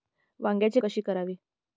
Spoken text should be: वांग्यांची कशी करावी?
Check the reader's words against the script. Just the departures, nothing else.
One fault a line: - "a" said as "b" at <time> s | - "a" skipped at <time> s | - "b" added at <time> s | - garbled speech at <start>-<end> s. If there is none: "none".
none